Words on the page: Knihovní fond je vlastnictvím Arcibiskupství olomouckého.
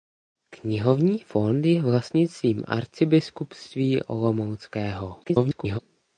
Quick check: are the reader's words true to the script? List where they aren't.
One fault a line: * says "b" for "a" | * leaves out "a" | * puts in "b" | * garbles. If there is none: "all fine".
* garbles